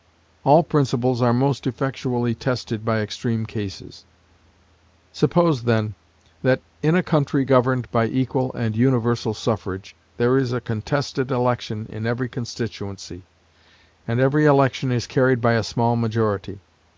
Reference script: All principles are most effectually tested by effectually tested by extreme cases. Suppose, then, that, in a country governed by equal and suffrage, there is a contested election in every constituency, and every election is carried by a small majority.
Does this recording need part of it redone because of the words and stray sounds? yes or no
yes